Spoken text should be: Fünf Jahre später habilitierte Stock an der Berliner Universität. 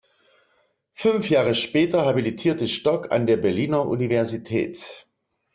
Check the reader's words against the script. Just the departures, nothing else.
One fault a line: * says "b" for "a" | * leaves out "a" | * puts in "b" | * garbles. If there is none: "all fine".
all fine